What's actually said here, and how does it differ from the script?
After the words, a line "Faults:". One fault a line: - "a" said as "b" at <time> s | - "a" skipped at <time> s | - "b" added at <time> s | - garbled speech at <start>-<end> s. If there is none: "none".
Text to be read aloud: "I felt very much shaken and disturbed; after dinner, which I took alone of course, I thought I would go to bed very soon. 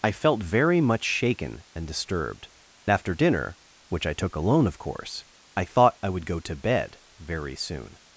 "I felt very much shaken and disturbed; after dinner, which I took alone of course, I thought I would go to bed very soon.
Faults:
none